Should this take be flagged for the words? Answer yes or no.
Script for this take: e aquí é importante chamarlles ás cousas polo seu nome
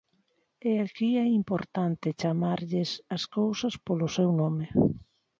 no